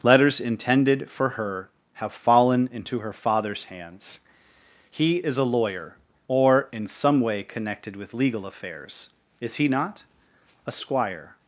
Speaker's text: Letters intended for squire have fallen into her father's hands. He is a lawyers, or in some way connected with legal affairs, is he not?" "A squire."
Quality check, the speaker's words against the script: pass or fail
fail